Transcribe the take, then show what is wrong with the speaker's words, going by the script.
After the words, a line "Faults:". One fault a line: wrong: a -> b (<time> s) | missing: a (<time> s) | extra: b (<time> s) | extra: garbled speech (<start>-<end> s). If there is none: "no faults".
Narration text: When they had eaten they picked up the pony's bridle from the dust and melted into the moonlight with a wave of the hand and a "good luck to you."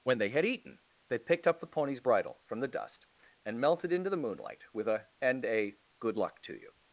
When they had eaten they picked up the pony's bridle from the dust and melted into the moonlight with a and a "good luck to you."
Faults:
missing: wave of the hand (5.1 s)